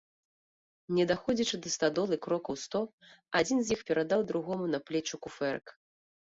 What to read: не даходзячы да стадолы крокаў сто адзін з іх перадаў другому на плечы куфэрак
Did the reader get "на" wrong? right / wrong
right